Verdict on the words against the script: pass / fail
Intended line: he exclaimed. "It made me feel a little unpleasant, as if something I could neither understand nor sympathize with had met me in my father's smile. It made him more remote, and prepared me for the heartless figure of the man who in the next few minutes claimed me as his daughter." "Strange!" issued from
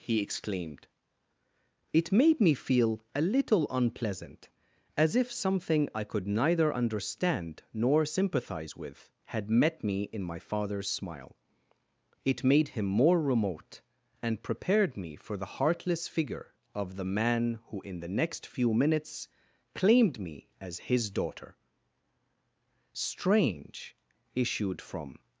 pass